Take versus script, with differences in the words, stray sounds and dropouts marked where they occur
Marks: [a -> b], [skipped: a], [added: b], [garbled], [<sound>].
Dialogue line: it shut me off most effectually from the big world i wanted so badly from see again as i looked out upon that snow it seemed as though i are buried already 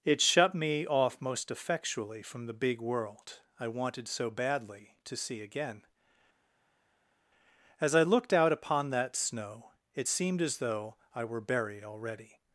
it shut me off most effectually from the big world i wanted so badly [from -> to] see again as i looked out upon that snow it seemed as though i [are -> were] buried already